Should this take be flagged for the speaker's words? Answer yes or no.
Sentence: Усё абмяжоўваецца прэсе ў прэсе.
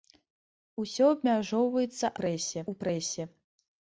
no